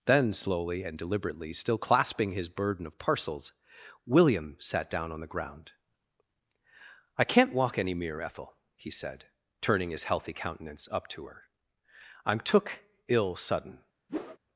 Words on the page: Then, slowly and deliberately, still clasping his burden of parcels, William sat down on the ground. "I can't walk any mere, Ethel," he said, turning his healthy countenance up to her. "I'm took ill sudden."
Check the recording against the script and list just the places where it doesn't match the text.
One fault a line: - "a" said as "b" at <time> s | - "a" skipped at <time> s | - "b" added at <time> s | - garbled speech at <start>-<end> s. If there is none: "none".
none